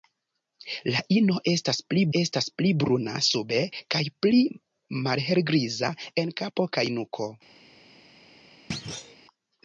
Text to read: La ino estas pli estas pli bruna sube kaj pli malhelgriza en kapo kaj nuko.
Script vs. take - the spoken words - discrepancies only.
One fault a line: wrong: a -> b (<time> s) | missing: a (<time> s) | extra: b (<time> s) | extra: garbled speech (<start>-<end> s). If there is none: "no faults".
no faults